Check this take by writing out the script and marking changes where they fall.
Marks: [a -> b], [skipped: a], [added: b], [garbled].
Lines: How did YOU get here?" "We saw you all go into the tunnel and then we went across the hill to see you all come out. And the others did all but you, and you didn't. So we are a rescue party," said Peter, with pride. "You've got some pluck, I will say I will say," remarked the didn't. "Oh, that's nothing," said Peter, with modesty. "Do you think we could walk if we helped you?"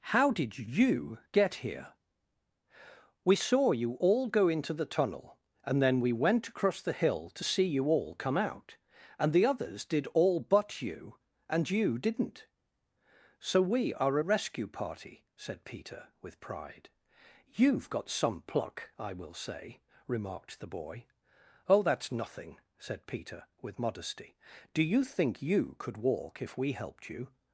How did YOU get here?" "We saw you all go into the tunnel and then we went across the hill to see you all come out. And the others did all but you, and you didn't. So we are a rescue party," said Peter, with pride. "You've got some pluck, I will say [skipped: I will say,"] remarked the [didn't. -> boy] "Oh, that's nothing," said Peter, with modesty. "Do you think [we -> you] could walk if we helped you?"